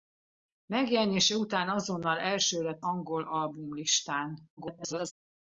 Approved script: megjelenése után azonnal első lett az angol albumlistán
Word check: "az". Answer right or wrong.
wrong